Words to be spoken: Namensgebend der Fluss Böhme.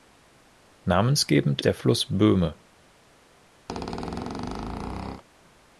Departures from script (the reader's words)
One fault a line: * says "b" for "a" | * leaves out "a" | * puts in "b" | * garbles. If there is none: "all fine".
all fine